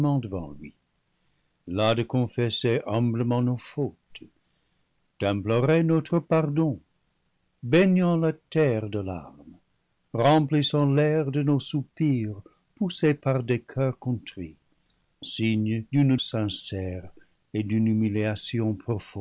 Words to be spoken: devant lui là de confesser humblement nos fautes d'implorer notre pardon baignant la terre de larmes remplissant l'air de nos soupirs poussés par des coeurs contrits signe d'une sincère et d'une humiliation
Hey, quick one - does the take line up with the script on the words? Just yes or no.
yes